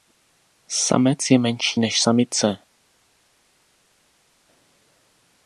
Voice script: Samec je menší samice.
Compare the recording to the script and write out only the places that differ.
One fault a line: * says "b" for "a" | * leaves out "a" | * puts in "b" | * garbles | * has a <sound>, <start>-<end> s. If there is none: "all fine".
* puts in "než"